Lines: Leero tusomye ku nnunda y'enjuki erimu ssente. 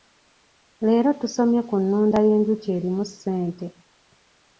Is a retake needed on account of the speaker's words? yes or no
no